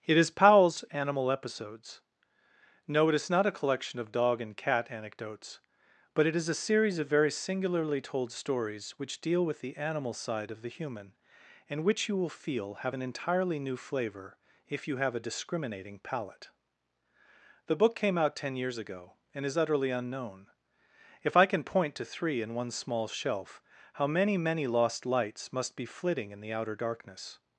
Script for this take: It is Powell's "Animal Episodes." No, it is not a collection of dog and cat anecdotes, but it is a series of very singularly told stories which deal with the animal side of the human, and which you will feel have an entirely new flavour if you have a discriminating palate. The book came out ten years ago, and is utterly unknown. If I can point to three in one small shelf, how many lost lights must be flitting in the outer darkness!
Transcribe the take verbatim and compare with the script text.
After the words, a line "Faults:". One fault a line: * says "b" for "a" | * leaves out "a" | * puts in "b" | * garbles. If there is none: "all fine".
It is Powell's "Animal Episodes." No, it is not a collection of dog and cat anecdotes, but it is a series of very singularly told stories which deal with the animal side of the human, and which you will feel have an entirely new flavour if you have a discriminating palate. The book came out ten years ago, and is utterly unknown. If I can point to three in one small shelf, how many many lost lights must be flitting in the outer darkness!
Faults:
* puts in "many"